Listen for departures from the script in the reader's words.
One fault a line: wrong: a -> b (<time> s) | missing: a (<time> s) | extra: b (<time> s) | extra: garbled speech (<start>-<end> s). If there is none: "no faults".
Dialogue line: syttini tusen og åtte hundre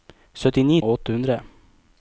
missing: tusen (0.8 s)